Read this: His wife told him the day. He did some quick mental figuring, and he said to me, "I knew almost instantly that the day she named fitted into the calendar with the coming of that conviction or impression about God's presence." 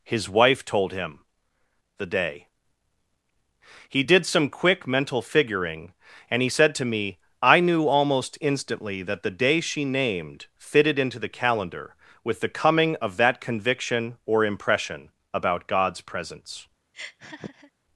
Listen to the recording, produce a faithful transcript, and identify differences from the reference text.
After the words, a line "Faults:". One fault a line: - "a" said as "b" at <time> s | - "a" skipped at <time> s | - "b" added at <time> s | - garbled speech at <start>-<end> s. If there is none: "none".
His wife told him the day. He did some quick mental figuring, and he said to me, "I knew almost instantly that the day she named fitted into the calendar with the coming of that conviction or impression about God's presence."
Faults:
none